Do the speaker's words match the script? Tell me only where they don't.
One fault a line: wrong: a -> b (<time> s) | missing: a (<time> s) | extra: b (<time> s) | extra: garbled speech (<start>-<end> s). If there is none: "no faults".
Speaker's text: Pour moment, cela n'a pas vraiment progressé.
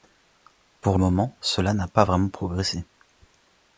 no faults